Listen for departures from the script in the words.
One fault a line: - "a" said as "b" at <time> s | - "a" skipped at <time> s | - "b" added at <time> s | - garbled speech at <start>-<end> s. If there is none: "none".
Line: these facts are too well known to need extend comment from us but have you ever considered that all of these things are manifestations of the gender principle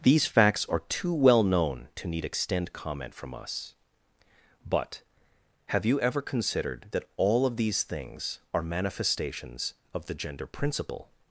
none